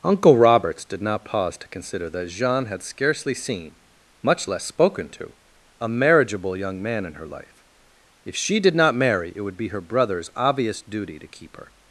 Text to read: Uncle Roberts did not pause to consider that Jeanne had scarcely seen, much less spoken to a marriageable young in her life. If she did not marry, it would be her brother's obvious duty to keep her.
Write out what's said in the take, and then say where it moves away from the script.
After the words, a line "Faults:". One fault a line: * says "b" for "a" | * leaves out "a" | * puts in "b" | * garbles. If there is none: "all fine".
Uncle Roberts did not pause to consider that Jeanne had scarcely seen, much less spoken to a marriageable young man in her life. If she did not marry, it would be her brother's obvious duty to keep her.
Faults:
* puts in "man"